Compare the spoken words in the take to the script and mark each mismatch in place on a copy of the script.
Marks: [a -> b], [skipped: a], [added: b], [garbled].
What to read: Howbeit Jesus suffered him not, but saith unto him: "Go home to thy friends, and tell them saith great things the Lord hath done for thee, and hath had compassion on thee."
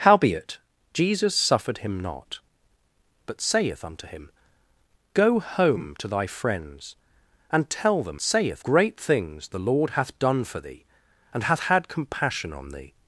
Howbeit Jesus suffered him not, but saith unto him: "Go home to thy friends, and tell them saith great things the Lord hath done for thee, and hath had compassion on thee."